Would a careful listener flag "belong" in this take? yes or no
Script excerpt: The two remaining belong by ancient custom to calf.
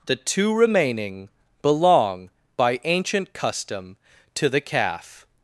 no